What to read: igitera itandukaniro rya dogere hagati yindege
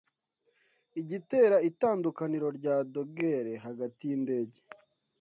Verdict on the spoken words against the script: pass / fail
pass